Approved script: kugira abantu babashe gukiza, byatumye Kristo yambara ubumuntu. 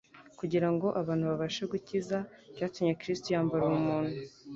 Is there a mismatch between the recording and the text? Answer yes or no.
yes